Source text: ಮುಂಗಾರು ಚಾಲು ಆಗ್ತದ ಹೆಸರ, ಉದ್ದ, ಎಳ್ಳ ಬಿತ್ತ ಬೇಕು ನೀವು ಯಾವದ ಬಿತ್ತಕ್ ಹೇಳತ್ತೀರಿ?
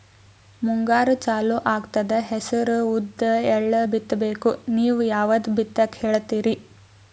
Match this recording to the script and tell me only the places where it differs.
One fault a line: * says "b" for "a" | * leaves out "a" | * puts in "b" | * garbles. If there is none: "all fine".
all fine